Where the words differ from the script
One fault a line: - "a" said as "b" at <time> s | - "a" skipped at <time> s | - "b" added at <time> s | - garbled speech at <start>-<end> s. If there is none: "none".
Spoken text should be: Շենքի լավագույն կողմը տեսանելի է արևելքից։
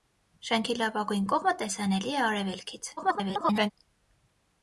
- garbled speech at 3.0-3.7 s